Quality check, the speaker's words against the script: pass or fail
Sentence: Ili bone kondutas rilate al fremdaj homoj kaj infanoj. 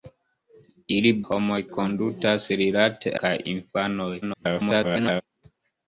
fail